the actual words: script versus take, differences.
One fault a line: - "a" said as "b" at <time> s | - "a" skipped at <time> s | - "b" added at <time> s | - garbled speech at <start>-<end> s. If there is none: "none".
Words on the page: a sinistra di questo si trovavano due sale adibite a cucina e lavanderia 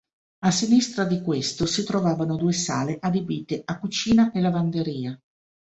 none